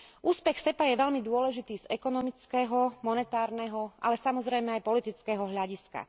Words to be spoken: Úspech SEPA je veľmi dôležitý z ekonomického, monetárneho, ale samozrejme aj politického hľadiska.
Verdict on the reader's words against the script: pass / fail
pass